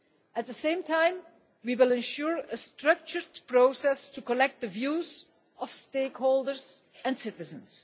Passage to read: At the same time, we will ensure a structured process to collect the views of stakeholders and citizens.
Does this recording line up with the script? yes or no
yes